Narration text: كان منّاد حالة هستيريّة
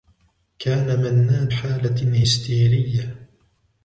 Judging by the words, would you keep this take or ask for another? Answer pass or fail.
pass